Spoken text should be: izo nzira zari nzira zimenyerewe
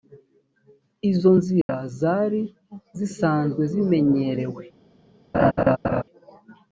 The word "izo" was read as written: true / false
true